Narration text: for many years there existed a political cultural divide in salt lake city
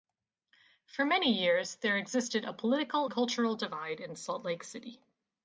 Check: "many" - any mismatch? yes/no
no